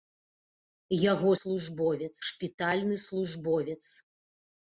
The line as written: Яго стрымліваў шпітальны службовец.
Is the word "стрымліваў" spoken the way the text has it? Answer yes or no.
no